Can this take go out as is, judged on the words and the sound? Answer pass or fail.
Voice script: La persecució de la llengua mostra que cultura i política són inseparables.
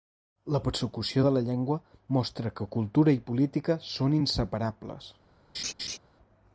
fail